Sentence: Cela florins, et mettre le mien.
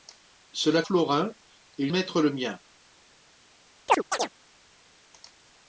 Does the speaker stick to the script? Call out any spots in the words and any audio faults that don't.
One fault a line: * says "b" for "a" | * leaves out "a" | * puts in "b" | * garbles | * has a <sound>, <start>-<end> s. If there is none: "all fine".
* has a chirp, 3.9-4.3 s